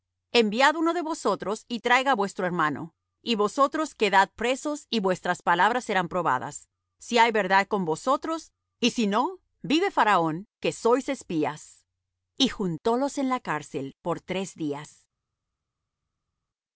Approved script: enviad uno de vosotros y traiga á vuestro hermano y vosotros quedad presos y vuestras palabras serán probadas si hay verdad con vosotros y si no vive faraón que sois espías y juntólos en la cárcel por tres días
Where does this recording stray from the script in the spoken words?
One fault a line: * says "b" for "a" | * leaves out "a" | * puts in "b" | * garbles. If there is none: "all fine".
all fine